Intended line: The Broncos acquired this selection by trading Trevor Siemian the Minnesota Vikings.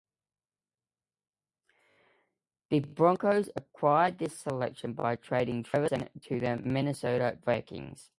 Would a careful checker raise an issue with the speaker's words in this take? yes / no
yes